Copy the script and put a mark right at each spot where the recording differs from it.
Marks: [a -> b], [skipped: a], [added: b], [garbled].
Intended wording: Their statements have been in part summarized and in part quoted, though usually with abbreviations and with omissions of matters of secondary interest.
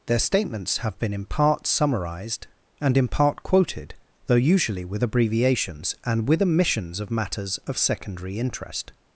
Their statements have been in part summarized and in part quoted, though usually with abbreviations and with omissions of matters of secondary interest.